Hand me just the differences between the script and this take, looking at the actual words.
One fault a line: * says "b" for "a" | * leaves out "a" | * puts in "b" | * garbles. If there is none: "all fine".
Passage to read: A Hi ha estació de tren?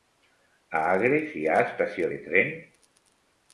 * puts in "Agres"